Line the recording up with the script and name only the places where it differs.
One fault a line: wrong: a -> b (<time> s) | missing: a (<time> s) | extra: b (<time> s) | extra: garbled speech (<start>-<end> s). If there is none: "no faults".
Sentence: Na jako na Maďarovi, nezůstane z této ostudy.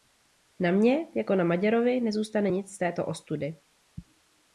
extra: mně (0.7 s)
extra: nic (2.5 s)